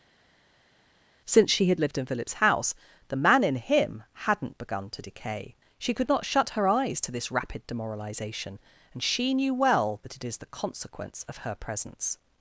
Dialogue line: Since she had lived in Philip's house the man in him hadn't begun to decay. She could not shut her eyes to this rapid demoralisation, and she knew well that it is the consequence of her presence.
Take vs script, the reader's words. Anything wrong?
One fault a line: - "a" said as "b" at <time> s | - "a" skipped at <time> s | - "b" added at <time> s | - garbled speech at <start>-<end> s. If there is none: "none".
none